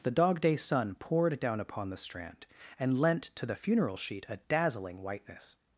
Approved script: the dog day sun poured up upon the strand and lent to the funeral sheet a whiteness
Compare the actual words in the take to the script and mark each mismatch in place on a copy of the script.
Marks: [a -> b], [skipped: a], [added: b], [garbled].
the dog day sun poured [up -> down] upon the strand and lent to the funeral sheet a [added: dazzling] whiteness